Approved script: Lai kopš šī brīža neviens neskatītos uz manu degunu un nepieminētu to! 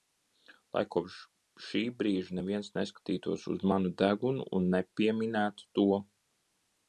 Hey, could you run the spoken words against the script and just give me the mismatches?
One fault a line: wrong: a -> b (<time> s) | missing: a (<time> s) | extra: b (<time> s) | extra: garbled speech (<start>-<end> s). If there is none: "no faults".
no faults